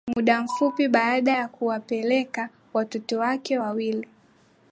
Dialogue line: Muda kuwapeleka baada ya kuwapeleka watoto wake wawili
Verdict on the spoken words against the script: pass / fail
fail